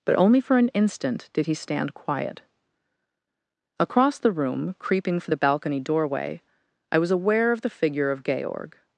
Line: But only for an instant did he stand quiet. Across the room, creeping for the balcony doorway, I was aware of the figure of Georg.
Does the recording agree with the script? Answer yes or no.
yes